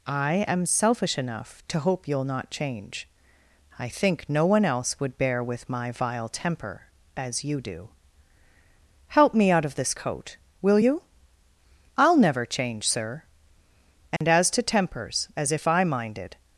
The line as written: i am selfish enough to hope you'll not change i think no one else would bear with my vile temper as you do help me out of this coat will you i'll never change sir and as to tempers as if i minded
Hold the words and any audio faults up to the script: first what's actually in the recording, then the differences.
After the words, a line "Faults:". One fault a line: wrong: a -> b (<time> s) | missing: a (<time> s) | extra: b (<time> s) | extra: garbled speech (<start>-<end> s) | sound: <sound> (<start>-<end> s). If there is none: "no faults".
i am selfish enough to hope you'll not change i think no one else would bear with my vile temper as you do help me out of this coat will you i'll never change sir and as to tempers as if i minded
Faults:
sound: dropout (14.2-14.2 s)